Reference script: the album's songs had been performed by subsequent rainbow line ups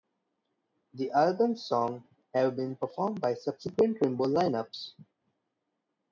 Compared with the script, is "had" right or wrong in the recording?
wrong